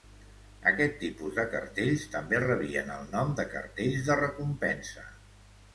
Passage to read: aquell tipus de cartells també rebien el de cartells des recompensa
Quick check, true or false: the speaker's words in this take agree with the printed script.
false